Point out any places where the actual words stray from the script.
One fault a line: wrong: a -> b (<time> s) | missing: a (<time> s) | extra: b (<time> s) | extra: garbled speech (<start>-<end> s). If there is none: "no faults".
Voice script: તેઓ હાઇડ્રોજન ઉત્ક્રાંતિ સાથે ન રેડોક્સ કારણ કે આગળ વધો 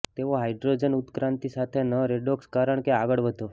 no faults